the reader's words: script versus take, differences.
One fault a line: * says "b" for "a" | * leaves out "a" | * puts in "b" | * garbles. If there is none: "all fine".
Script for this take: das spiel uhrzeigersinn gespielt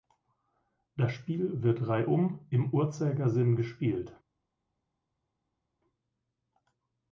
* puts in "wird reihum im"